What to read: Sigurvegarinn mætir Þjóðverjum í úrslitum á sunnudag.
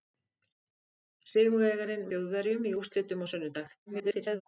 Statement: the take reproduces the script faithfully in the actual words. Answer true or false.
false